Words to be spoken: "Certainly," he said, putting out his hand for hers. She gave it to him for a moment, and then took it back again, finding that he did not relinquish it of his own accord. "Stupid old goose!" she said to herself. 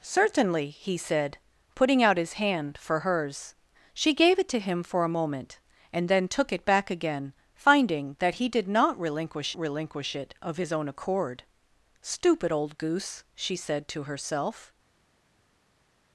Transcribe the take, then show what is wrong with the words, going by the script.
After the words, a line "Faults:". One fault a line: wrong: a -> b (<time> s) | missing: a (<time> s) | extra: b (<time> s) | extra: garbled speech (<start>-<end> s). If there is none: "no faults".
"Certainly," he said, putting out his hand for hers. She gave it to him for a moment, and then took it back again, finding that he did not relinquish relinquish it of his own accord. "Stupid old goose!" she said to herself.
Faults:
extra: relinquish (9.6 s)